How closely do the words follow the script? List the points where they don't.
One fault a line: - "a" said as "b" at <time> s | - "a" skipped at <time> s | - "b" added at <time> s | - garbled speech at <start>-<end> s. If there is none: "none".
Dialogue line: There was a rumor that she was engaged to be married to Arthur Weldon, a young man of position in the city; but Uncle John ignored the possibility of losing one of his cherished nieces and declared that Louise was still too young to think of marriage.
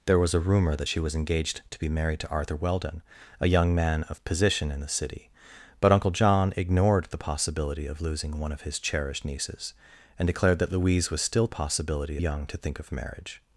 - "too" said as "possibility" at 11.5 s